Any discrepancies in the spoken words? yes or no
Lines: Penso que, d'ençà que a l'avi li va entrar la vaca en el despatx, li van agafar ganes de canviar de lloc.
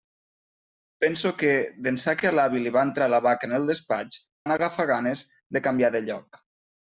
yes